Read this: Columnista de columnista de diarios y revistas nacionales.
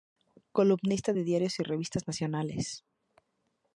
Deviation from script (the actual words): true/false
true